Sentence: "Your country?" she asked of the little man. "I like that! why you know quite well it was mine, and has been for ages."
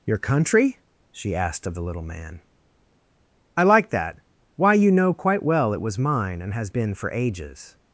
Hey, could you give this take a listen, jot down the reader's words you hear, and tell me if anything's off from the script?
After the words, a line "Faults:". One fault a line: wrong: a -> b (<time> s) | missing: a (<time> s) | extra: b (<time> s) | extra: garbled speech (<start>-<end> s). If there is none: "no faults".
"Your country?" she asked of the little man. "I like that! why you know quite well it was mine, and has been for ages."
Faults:
no faults